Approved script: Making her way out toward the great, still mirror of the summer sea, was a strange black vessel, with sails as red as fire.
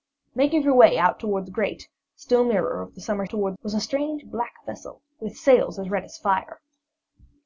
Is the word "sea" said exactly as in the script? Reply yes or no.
no